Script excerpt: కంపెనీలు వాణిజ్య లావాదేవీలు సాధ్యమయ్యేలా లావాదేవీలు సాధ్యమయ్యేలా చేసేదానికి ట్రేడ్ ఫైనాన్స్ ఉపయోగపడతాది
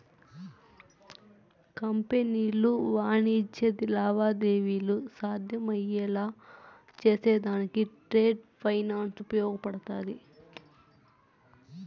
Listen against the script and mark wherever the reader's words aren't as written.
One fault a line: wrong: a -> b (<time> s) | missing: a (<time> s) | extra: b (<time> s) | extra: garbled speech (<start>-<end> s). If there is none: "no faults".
missing: లావాదేవీలు సాధ్యమయ్యేలా (6.2 s)